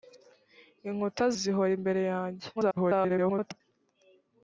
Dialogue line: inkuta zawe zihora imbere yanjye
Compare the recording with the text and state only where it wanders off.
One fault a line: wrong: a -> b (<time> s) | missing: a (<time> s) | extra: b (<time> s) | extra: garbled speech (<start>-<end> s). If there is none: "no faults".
missing: zawe (1.2 s)
extra: garbled speech (2.6-3.6 s)